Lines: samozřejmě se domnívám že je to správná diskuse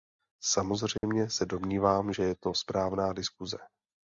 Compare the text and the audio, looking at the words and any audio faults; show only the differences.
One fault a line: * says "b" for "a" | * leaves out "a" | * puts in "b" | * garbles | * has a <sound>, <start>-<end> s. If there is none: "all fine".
* has a dropout, 1.0-1.0 s